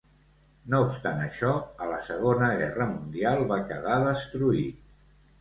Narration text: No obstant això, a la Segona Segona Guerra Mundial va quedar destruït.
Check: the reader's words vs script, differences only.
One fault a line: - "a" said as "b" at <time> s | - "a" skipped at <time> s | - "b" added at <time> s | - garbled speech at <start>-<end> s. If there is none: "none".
- "Segona" skipped at 2.5 s